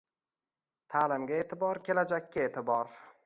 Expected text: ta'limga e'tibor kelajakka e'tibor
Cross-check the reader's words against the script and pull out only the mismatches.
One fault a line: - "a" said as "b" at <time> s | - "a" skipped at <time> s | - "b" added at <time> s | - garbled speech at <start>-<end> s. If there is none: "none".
none